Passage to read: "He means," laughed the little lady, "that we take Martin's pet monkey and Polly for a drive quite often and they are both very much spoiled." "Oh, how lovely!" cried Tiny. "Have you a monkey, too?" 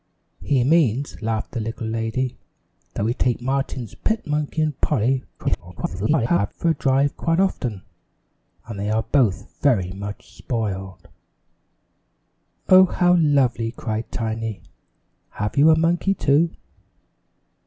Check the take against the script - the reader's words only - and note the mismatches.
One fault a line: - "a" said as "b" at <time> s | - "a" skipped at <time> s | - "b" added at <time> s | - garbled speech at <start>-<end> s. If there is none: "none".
- garbled speech at 5.4-6.5 s